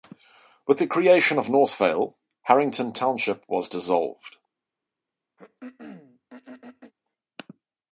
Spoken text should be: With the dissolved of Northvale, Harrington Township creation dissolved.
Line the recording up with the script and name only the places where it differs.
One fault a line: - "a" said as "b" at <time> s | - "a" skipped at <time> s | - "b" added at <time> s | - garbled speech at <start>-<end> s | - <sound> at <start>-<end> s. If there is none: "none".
- "dissolved" said as "creation" at 0.9 s
- "creation" said as "was" at 3.5 s
- throat clearing at 5.4-6.9 s